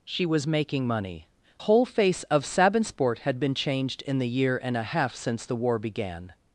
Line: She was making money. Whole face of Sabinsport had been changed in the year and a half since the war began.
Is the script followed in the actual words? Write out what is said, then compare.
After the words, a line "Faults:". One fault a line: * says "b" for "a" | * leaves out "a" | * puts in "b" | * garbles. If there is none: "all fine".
She was making money. Whole face of Sabinsport had been changed in the year and a half since the war began.
Faults:
all fine